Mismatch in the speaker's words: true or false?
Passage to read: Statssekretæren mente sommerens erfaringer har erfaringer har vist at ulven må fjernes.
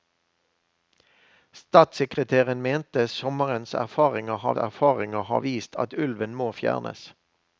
false